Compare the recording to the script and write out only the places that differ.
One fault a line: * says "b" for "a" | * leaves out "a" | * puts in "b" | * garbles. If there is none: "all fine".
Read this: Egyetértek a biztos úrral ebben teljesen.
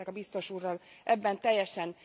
all fine